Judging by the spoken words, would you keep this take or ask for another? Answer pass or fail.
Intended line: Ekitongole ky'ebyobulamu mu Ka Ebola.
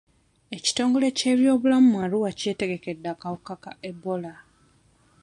fail